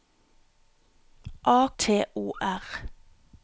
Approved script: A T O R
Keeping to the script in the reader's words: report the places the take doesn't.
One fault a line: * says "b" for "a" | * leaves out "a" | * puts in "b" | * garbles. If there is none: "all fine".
all fine